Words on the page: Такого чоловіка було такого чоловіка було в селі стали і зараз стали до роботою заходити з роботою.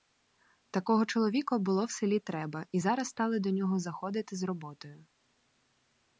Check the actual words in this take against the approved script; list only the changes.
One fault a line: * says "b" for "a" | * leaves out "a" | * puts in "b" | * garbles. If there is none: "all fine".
* leaves out "такого чоловіка було"
* says "треба" for "стали"
* says "нього" for "роботою"